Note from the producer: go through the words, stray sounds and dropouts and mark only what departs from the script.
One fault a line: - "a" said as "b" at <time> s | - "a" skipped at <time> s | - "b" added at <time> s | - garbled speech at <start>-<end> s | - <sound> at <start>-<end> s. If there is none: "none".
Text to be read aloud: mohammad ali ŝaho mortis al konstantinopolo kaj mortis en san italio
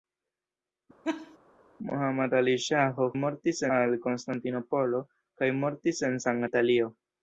- laugh at 1.0-1.4 s